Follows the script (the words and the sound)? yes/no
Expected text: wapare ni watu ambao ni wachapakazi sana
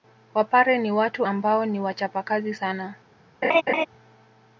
no